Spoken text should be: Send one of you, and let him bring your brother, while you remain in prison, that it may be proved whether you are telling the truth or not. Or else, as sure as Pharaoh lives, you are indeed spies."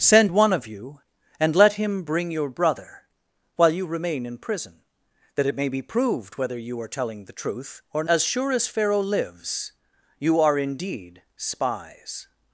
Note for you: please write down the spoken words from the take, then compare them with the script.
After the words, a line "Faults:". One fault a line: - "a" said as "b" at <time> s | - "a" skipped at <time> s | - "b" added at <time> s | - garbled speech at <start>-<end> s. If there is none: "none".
Send one of you, and let him bring your brother, while you remain in prison, that it may be proved whether you are telling the truth or as sure as Pharaoh lives, you are indeed spies."
Faults:
- "not Or else" skipped at 8.0 s